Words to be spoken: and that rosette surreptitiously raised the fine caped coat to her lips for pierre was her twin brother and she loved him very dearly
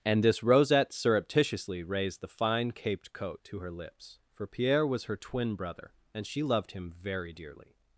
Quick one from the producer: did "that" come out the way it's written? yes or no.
no